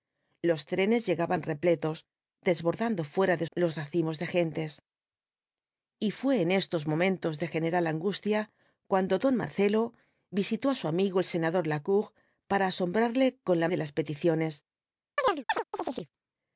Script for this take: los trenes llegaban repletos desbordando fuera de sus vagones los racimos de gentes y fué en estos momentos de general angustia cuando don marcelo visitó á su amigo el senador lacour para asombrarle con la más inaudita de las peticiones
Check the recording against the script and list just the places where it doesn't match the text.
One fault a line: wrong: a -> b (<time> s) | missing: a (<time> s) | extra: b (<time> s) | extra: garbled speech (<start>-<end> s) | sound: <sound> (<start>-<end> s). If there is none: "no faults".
missing: sus vagones (3.5 s)
missing: más inaudita (13.7 s)
sound: chirp (15.2-16.1 s)